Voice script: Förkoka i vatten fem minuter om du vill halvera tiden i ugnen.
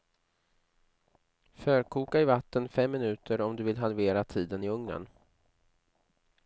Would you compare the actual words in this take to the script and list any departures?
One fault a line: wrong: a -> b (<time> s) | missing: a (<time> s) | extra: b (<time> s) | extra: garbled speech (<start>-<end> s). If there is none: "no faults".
no faults